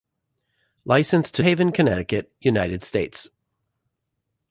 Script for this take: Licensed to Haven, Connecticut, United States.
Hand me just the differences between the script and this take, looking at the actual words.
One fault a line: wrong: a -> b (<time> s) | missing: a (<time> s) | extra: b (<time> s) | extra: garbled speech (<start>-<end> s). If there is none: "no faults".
no faults